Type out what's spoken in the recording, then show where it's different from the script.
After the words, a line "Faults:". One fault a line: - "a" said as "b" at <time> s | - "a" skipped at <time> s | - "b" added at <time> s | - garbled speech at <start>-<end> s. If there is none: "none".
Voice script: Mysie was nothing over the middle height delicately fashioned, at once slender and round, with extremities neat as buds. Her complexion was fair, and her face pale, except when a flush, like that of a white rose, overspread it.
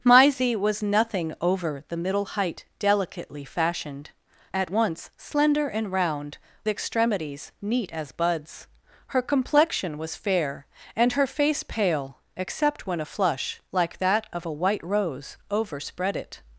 Mysie was nothing over the middle height delicately fashioned, at once slender and round, extremities neat as buds. Her complexion was fair, and her face pale, except when a flush, like that of a white rose, overspread it.
Faults:
- "with" skipped at 6.4 s